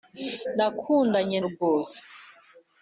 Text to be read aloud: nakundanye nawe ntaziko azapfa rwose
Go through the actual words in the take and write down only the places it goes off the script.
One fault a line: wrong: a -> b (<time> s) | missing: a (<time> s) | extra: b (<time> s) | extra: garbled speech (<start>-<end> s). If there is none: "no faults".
missing: nawe ntaziko azapfa (1.4 s)